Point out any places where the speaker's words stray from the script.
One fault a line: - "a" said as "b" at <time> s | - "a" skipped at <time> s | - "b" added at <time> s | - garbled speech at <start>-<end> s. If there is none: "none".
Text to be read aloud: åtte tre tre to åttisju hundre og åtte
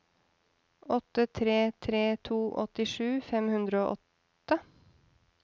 - "fem" added at 3.3 s